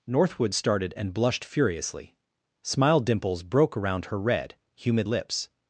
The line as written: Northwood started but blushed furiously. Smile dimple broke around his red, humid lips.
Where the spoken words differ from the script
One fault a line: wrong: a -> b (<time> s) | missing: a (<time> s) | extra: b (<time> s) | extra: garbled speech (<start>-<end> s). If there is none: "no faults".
wrong: but -> and (1.0 s)
wrong: dimple -> dimples (3.0 s)
wrong: his -> her (4.1 s)